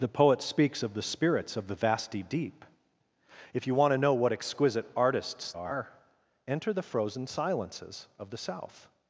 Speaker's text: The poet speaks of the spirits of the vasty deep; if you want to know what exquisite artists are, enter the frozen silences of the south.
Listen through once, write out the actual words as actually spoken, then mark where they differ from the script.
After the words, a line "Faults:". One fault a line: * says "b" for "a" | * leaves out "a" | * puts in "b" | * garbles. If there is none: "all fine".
The poet speaks of the spirits of the vasty deep; if you want to know what exquisite artists are, enter the frozen silences of the south.
Faults:
all fine